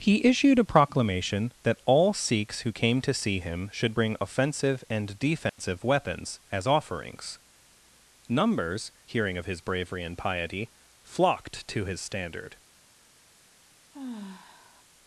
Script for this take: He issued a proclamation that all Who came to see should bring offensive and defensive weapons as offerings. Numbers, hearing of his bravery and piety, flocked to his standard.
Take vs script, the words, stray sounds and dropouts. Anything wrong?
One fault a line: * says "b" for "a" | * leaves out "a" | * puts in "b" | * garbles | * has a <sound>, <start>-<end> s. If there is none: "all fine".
* puts in "Sikhs"
* puts in "him"
* has a dropout, 5.5-5.6 s
* has a sigh, 13.9-14.8 s